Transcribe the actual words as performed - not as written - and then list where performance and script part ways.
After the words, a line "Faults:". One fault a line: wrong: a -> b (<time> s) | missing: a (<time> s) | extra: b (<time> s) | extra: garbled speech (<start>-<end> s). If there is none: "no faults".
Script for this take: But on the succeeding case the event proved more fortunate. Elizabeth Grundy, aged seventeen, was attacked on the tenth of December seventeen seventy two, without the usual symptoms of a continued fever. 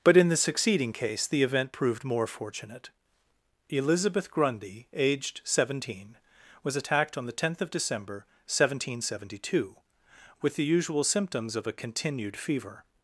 But in the succeeding case the event proved more fortunate. Elizabeth Grundy, aged seventeen, was attacked on the tenth of December seventeen seventy two, with the usual symptoms of a continued fever.
Faults:
wrong: on -> in (0.2 s)
wrong: without -> with (10.4 s)